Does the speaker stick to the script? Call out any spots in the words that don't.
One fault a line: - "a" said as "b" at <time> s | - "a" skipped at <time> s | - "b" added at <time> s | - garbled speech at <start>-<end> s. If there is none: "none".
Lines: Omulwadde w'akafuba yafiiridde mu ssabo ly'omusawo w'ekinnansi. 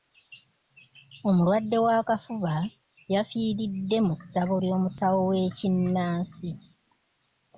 none